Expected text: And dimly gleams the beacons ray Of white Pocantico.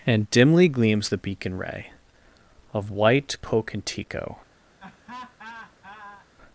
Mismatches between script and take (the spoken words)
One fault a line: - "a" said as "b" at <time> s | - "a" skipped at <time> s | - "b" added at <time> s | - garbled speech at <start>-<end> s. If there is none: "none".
- "beacons" said as "beacon" at 1.2 s